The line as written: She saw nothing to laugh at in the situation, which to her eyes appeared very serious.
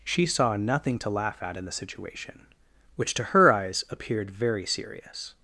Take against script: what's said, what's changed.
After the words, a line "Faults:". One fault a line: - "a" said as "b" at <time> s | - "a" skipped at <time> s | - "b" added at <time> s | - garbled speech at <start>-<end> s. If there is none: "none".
She saw nothing to laugh at in the situation, which to her eyes appeared very serious.
Faults:
none